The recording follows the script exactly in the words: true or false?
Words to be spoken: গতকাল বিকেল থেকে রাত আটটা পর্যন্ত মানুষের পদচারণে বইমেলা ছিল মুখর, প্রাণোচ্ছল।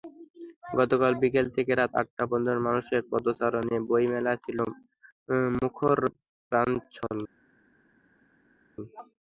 true